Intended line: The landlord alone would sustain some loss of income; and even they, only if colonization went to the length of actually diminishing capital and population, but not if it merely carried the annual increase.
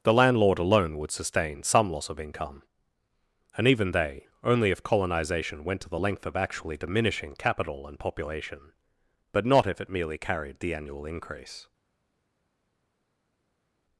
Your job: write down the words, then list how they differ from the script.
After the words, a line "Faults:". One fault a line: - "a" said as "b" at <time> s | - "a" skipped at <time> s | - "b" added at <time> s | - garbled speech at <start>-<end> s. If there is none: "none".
The landlord alone would sustain some loss of income; and even they, only if colonization went to the length of actually diminishing capital and population, but not if it merely carried the annual increase.
Faults:
none